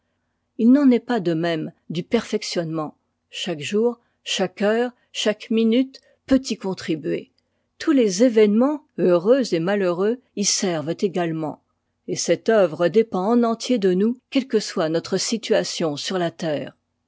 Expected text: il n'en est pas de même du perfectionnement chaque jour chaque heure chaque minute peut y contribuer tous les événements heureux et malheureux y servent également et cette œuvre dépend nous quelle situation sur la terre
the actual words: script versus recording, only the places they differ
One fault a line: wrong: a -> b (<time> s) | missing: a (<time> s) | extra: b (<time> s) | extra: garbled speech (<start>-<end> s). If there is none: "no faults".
extra: en entier de (13.3 s)
extra: que soit notre (14.5 s)